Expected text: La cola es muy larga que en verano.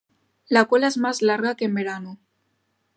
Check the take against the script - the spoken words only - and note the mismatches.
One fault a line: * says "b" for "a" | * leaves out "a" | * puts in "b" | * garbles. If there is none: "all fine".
* says "más" for "muy"